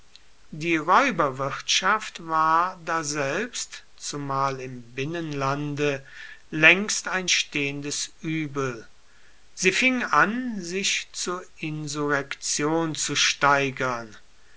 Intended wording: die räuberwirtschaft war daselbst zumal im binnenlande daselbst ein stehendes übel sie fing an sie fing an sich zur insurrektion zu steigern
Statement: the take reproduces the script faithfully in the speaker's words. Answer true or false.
false